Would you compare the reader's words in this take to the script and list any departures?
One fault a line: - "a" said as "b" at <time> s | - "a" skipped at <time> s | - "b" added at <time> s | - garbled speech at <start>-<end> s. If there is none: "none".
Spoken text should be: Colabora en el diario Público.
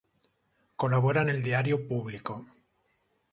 none